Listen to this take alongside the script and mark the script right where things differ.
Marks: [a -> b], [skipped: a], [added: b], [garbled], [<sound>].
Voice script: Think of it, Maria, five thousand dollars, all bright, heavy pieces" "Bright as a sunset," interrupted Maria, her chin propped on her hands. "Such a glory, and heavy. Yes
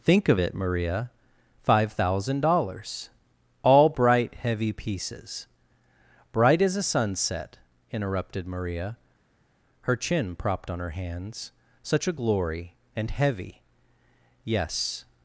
Think of it, Maria, five thousand dollars, all bright, heavy pieces" "Bright as a sunset," interrupted Maria, her chin propped on her hands. "Such a glory, and heavy. Yes